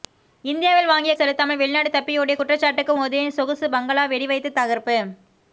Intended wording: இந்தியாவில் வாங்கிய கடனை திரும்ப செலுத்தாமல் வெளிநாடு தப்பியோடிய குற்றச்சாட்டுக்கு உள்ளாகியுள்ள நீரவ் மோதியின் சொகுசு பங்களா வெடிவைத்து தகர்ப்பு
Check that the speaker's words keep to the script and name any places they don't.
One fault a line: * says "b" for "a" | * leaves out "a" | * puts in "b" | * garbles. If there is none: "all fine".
* leaves out "கடனை திரும்ப"
* leaves out "உள்ளாகியுள்ள நீரவ்"